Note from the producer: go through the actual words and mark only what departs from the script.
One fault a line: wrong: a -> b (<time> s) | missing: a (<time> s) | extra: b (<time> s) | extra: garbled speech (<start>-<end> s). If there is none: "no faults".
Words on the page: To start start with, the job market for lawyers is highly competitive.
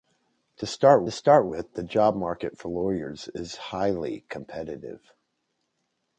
no faults